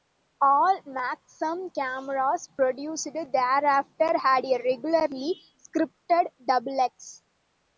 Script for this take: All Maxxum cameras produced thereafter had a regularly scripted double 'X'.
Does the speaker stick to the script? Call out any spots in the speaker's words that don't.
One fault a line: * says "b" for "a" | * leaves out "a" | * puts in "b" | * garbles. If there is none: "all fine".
all fine